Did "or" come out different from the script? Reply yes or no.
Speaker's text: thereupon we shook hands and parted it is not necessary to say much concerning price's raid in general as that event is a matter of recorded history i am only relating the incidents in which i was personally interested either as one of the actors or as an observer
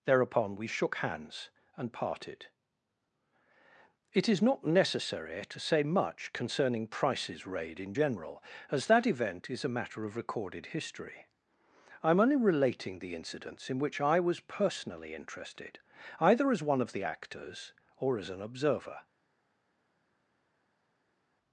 no